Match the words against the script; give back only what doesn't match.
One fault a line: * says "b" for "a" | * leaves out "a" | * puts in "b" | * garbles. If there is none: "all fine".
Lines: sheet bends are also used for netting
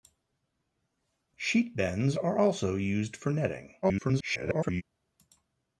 * garbles